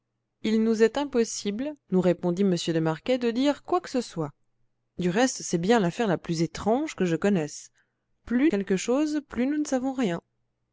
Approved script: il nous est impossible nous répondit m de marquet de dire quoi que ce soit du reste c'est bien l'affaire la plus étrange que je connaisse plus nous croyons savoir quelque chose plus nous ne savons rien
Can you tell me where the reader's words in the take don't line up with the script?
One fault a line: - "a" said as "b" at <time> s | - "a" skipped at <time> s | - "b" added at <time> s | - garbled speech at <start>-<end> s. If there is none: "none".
- "nous croyons savoir" skipped at 8.5 s